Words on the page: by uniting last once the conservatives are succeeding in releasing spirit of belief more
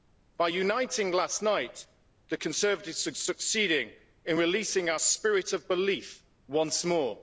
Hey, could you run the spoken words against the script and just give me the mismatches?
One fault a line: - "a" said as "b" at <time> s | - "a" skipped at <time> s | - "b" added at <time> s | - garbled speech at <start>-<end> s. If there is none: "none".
- "once" said as "night" at 1.4 s
- "our" added at 4.9 s
- "once" added at 6.5 s